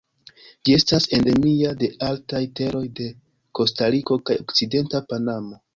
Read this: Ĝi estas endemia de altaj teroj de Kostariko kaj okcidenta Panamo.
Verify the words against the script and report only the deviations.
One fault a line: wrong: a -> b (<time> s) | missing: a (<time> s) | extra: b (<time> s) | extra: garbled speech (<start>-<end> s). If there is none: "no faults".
no faults